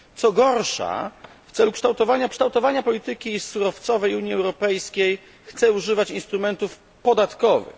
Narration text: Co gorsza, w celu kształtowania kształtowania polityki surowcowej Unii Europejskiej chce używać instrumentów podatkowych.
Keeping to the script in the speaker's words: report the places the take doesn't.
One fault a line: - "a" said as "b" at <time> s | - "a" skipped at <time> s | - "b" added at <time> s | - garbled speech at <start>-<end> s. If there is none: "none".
none